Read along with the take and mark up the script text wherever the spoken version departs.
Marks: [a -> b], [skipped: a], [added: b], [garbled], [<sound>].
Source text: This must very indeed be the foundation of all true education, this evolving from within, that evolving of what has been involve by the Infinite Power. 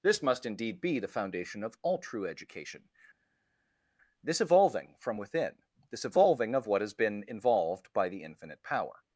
This must [skipped: very] indeed be the foundation of all true education, this evolving from within, [that -> this] evolving of what has been [involve -> involved] by the Infinite Power.